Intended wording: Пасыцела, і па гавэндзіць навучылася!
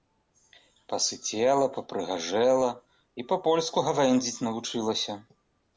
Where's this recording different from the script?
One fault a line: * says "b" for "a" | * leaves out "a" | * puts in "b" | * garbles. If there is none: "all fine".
* puts in "папрыгажэла"
* puts in "польску"